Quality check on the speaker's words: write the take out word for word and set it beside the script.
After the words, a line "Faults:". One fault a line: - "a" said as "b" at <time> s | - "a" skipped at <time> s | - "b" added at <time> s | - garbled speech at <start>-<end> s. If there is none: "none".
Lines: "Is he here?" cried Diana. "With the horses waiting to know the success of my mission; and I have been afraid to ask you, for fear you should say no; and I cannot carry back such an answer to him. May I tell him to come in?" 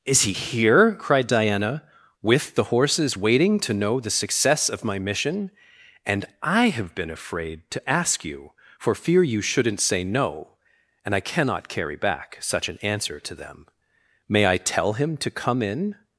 "Is he here?" cried Diana. "With the horses waiting to know the success of my mission; and I have been afraid to ask you, for fear you shouldn't say no; and I cannot carry back such an answer to them. May I tell him to come in?"
Faults:
- "should" said as "shouldn't" at 9.4 s
- "him" said as "them" at 13.3 s